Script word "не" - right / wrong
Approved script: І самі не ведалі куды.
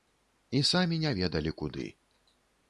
right